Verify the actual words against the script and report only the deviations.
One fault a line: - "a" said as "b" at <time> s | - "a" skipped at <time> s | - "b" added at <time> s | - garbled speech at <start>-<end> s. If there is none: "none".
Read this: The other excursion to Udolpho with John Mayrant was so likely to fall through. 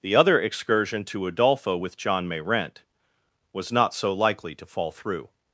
- "not" added at 3.7 s